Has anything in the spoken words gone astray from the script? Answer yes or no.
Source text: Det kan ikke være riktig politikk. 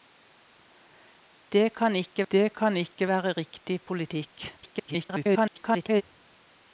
yes